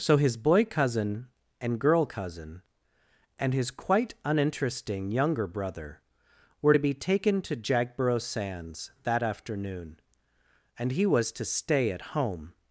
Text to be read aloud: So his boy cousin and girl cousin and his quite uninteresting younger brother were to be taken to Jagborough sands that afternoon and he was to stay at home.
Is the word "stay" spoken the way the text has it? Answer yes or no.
yes